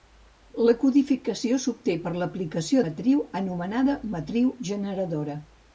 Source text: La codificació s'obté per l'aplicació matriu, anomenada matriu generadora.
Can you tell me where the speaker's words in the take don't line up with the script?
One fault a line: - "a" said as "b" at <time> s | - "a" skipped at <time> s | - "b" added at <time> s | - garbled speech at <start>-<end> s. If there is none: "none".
none